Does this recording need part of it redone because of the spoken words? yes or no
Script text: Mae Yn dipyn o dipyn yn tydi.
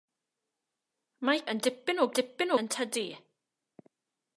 no